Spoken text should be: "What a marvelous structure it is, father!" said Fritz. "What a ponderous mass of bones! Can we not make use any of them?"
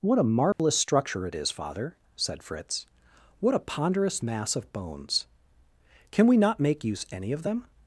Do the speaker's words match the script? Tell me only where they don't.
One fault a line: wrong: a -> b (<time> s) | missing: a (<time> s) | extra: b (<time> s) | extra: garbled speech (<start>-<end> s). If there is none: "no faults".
no faults